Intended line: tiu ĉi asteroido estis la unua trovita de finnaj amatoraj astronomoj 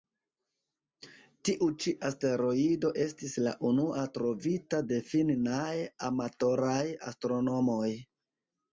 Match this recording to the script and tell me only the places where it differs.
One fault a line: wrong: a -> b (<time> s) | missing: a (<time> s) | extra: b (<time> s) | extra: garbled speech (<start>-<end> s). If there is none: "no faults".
no faults